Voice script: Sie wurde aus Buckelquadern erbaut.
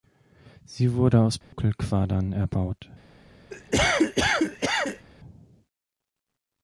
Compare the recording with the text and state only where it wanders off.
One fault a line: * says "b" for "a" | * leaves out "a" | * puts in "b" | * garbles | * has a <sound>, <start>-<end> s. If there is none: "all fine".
* has a dropout, 1.4-1.5 s
* has a cough, 3.5-5.1 s